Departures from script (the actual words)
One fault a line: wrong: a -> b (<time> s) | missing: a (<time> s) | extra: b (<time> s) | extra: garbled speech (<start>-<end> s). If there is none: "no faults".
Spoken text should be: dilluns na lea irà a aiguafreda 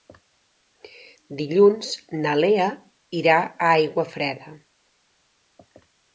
no faults